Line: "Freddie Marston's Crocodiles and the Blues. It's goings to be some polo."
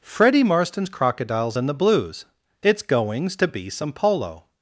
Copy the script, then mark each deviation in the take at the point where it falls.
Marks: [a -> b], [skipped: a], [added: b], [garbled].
"Freddie Marston's Crocodiles and the Blues. It's goings to be some polo."